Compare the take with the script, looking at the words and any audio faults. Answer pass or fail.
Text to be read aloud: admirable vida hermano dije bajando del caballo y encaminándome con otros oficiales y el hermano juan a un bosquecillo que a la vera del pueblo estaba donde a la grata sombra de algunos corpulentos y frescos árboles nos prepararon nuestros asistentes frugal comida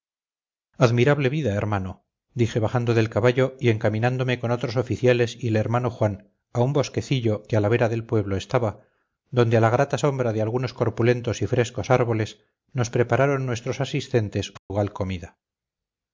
fail